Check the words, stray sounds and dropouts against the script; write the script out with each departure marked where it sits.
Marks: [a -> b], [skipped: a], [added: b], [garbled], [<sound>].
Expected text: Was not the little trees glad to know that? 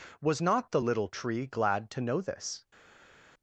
Was not the little [trees -> tree] glad to know [that? -> this]